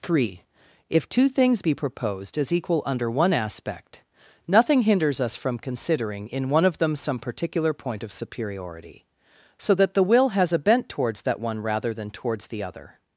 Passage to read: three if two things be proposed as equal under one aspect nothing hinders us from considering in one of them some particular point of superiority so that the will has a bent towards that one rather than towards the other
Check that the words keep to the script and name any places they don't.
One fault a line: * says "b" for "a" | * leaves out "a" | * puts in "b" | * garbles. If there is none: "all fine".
all fine